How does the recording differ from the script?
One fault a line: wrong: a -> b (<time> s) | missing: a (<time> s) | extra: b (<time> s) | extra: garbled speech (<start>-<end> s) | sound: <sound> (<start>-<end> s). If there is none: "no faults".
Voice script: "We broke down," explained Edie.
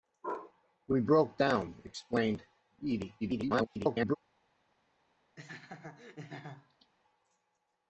extra: garbled speech (3.2-4.2 s)
sound: laugh (5.4-6.9 s)